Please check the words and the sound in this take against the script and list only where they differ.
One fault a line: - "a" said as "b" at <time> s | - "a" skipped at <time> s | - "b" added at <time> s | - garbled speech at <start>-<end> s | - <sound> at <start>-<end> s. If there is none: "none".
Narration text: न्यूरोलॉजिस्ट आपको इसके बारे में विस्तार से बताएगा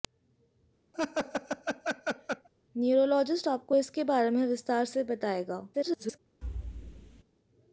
- laugh at 0.9-2.5 s
- garbled speech at 5.7-6.2 s
- thud at 6.4-7.2 s